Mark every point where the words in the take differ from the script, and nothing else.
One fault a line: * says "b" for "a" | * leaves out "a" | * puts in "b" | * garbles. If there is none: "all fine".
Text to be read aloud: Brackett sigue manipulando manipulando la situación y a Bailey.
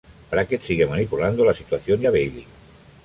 * leaves out "manipulando"